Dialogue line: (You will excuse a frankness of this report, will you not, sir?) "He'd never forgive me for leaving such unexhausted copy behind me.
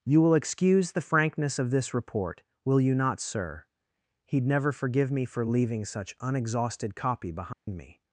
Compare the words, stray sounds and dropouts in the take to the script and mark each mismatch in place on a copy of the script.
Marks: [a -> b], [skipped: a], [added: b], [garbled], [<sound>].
(You will excuse [a -> the] frankness of this report, will you not, sir?) "He'd never forgive me for leaving such unexhausted copy behind [dropout] me.